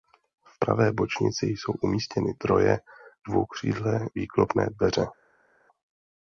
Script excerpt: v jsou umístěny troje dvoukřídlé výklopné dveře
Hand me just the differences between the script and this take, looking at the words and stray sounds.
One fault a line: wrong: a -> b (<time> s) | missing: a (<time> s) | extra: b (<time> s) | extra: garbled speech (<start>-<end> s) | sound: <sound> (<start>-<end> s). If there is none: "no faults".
extra: pravé bočnici (0.6 s)